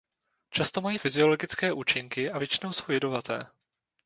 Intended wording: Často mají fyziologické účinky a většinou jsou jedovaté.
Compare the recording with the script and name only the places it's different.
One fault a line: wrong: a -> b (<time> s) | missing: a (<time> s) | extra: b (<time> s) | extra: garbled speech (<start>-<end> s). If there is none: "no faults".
no faults